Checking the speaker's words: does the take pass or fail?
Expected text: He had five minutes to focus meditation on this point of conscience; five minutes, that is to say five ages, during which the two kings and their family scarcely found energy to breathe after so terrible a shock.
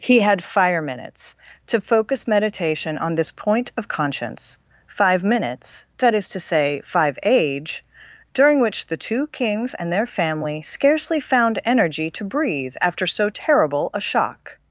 fail